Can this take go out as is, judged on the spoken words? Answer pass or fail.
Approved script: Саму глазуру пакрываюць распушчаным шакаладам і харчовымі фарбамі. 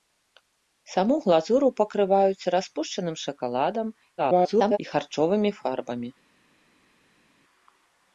fail